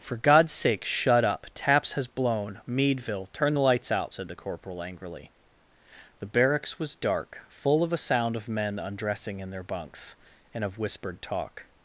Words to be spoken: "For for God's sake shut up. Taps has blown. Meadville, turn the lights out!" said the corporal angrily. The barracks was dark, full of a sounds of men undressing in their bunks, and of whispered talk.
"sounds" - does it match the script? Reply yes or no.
no